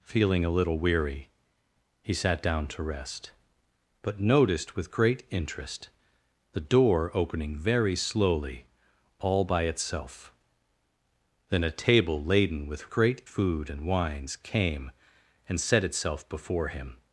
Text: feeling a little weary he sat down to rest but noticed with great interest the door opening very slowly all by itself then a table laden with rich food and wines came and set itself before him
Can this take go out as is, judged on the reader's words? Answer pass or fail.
fail